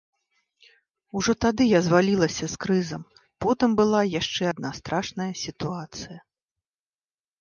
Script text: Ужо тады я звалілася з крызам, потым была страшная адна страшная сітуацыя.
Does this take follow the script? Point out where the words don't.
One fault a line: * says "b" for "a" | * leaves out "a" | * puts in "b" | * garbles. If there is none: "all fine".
* says "яшчэ" for "страшная"